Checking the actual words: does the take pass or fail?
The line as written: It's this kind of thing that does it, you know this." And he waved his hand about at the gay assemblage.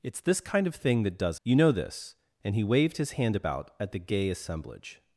fail